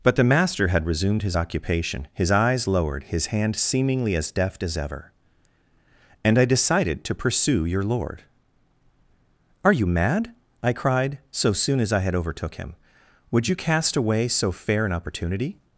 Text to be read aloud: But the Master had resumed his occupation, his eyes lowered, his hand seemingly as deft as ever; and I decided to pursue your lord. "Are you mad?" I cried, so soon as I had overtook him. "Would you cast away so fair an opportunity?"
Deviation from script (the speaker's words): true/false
false